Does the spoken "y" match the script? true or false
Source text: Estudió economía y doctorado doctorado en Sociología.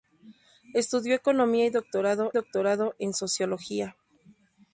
true